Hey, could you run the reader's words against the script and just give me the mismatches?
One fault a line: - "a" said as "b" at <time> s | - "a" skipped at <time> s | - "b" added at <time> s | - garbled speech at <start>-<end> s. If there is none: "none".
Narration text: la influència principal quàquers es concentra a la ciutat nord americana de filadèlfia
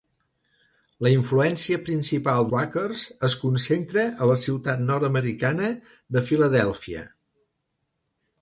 none